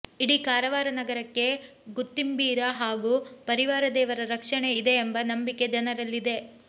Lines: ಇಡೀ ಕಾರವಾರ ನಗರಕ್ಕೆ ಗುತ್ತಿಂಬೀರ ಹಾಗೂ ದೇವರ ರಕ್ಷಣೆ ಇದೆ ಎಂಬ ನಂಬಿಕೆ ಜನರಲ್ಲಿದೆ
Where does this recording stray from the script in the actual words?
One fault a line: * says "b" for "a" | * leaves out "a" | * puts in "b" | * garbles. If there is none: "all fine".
* puts in "ಪರಿವಾರ"